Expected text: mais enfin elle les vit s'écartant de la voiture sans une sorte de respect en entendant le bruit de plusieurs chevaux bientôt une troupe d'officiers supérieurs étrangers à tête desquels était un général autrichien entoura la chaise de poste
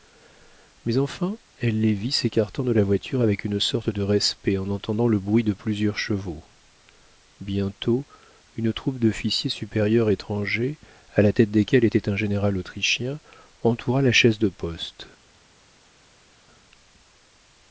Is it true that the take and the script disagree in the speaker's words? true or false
true